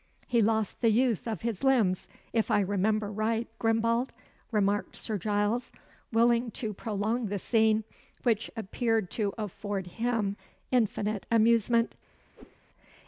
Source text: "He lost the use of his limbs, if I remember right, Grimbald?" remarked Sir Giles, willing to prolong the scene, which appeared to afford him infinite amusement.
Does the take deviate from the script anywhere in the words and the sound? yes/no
yes